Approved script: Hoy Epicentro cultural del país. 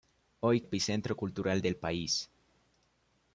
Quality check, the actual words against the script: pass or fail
pass